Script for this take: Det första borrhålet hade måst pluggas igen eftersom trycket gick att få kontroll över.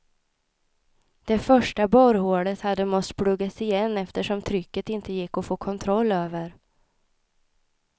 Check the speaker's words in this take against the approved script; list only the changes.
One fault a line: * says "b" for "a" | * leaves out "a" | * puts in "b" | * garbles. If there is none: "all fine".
* puts in "inte"